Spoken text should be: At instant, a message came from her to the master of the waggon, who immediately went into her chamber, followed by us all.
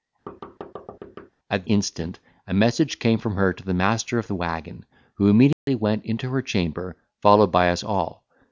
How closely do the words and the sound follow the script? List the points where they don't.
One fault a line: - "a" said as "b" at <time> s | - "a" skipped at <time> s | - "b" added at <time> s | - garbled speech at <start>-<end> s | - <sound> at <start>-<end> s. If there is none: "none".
- thud at 0.3-1.3 s
- dropout at 5.5-5.7 s